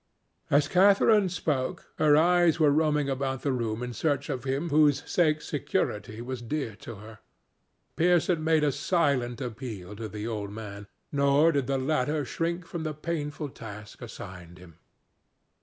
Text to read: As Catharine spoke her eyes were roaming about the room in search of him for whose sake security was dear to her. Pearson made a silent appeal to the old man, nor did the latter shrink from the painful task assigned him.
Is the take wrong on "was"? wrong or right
right